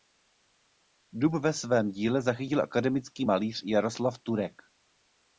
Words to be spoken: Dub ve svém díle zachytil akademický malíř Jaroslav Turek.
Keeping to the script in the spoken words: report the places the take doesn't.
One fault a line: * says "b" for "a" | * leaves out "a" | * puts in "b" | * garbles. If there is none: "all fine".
all fine